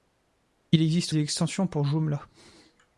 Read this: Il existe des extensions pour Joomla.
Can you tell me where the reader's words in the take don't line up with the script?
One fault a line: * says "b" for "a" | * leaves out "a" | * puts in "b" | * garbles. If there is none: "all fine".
all fine